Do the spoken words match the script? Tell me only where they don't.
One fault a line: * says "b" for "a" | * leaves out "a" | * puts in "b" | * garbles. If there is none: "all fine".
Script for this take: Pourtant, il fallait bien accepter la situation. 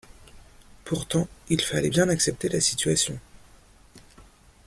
all fine